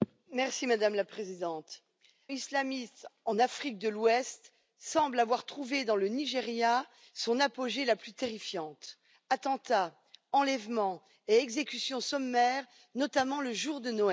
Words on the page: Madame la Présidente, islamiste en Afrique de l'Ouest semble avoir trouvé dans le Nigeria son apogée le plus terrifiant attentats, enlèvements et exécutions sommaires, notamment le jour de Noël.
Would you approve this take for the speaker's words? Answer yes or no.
yes